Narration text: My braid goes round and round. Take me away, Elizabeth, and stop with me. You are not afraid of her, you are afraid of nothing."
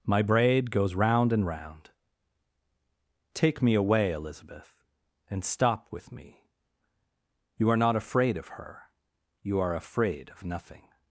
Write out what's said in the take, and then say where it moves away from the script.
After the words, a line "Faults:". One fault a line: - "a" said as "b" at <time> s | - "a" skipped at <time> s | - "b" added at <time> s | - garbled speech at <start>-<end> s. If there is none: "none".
My braid goes round and round. Take me away, Elizabeth, and stop with me. You are not afraid of her, you are afraid of nothing."
Faults:
none